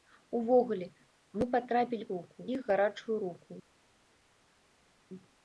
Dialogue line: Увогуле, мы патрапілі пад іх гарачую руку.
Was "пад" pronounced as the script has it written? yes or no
no